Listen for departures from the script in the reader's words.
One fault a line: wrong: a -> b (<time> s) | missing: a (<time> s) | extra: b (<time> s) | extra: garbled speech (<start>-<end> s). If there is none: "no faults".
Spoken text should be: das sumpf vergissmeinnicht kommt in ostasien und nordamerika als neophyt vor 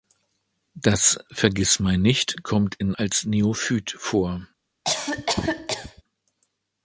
missing: sumpf (1.2 s)
missing: ostasien und nordamerika (2.9 s)